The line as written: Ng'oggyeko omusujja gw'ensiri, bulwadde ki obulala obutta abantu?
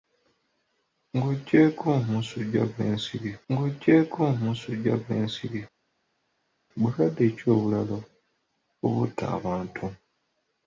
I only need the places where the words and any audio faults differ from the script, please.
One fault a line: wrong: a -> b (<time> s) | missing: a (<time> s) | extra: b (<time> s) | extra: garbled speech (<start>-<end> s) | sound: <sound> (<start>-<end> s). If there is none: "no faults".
extra: ng'oggyeko omusujja gw'ensiri (3.5 s)